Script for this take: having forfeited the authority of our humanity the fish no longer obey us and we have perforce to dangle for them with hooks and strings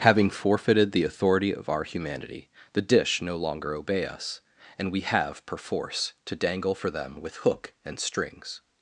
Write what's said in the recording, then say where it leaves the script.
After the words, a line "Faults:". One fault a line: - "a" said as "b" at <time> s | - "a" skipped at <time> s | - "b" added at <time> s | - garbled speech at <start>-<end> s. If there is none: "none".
having forfeited the authority of our humanity the dish no longer obey us and we have perforce to dangle for them with hook and strings
Faults:
- "fish" said as "dish" at 2.8 s
- "hooks" said as "hook" at 7.4 s